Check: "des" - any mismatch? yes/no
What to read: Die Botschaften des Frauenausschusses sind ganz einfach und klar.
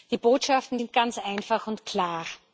yes